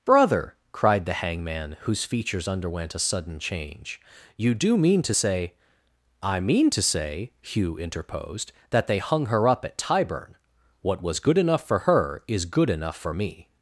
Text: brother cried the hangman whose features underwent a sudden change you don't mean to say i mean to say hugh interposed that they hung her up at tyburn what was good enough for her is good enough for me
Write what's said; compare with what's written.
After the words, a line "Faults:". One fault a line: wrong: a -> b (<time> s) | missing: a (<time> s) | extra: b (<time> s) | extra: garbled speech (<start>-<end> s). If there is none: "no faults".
brother cried the hangman whose features underwent a sudden change you do mean to say i mean to say hugh interposed that they hung her up at tyburn what was good enough for her is good enough for me
Faults:
wrong: don't -> do (4.5 s)